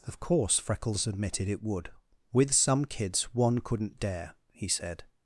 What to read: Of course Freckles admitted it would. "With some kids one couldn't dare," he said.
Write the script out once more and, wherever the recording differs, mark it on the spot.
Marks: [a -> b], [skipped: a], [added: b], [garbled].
Of course Freckles admitted it would. "With some kids one couldn't dare," he said.